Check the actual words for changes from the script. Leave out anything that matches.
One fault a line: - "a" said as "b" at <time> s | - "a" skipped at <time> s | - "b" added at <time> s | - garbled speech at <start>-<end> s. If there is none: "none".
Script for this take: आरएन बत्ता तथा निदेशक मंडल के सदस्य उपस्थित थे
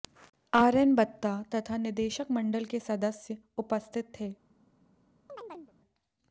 none